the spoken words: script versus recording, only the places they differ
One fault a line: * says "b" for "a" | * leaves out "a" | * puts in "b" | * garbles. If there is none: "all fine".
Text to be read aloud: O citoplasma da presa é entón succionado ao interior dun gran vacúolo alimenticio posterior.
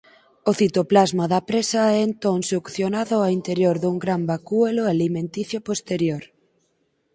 all fine